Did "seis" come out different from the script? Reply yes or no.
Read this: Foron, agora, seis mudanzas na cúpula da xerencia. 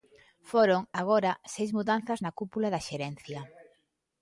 no